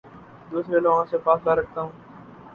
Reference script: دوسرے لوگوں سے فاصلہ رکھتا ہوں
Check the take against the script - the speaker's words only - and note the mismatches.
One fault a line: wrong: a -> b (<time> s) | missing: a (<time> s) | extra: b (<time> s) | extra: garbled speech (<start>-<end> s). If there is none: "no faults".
no faults